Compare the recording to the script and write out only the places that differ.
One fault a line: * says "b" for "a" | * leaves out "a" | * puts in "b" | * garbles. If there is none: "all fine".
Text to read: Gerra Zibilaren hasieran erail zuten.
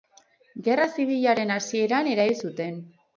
all fine